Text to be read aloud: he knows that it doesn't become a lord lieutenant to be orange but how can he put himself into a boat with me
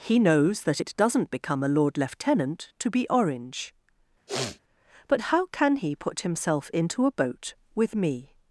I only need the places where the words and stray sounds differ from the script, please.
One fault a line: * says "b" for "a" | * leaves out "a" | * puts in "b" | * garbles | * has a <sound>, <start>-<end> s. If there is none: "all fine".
* has a sniff, 4.3-4.6 s